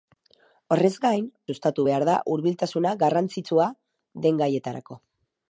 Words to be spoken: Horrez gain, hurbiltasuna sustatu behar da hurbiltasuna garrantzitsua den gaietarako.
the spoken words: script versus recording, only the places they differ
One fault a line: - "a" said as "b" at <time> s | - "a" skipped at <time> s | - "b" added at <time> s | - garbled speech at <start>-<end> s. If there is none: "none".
- "hurbiltasuna" skipped at 1.3 s